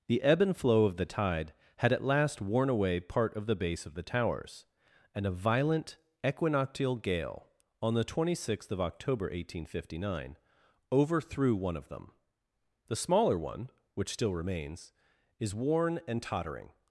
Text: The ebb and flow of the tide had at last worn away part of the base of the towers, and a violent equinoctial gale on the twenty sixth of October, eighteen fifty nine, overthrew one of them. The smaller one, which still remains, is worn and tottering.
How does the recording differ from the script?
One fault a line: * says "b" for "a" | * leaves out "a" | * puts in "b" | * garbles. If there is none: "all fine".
all fine